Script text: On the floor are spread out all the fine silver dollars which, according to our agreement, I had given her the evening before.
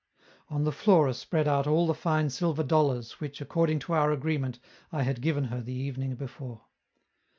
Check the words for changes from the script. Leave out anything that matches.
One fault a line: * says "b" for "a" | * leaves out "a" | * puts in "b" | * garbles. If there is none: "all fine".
all fine